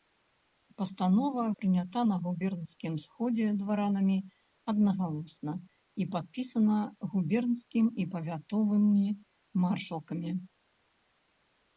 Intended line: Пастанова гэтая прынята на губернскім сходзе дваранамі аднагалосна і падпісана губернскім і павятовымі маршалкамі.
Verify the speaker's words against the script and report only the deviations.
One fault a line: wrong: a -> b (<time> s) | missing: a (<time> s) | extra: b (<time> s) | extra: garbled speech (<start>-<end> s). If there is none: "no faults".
missing: гэтая (1.4 s)